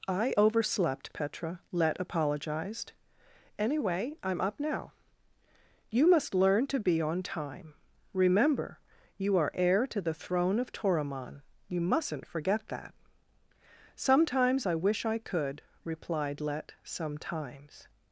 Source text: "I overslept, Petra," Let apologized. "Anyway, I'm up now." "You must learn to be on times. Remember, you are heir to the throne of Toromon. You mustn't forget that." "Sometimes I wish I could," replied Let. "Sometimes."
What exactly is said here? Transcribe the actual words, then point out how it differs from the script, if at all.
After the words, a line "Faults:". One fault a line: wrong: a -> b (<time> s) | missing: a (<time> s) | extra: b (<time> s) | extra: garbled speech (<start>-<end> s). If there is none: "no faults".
"I overslept, Petra," Let apologized. "Anyway, I'm up now." "You must learn to be on time. Remember, you are heir to the throne of Toromon. You mustn't forget that." "Sometimes I wish I could," replied Let. "Sometimes."
Faults:
wrong: times -> time (7.2 s)